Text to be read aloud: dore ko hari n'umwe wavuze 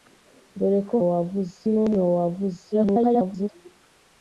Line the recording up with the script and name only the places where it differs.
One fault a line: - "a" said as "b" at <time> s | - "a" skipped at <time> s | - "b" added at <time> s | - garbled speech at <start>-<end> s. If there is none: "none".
- "hari" said as "wavuze" at 1.1 s
- garbled speech at 2.7-3.5 s